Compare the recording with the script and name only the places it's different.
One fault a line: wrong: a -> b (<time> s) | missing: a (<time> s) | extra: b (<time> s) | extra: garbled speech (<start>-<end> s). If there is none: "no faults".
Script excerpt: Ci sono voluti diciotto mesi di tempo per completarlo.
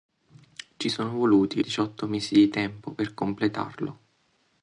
no faults